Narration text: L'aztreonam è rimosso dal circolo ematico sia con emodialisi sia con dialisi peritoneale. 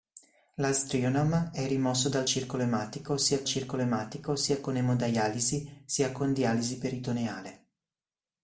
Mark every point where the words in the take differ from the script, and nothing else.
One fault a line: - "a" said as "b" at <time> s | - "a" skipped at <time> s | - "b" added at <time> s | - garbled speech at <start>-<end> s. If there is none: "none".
- "circolo ematico sia" added at 3.4 s